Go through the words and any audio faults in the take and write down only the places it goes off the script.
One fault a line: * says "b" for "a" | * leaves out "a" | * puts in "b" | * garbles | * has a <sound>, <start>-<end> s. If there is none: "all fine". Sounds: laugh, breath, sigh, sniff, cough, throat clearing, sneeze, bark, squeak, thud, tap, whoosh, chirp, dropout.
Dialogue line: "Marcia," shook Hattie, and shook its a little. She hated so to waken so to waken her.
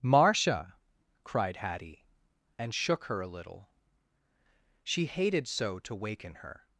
* says "cried" for "shook"
* says "her" for "its"
* leaves out "so to waken"